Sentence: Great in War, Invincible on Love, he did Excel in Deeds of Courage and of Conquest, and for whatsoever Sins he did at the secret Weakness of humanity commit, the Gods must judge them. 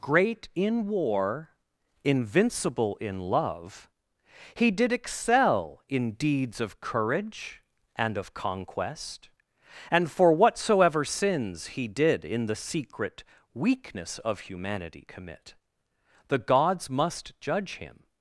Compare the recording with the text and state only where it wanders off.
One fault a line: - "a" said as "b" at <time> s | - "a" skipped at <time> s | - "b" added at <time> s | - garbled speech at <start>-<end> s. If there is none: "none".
- "on" said as "in" at 3.0 s
- "at" said as "in" at 12.2 s
- "them" said as "him" at 17.8 s